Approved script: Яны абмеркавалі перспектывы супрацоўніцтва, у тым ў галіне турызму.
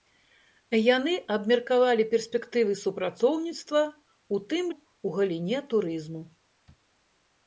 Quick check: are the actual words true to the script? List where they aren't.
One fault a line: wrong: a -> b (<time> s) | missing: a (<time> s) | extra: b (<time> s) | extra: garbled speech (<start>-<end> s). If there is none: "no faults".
no faults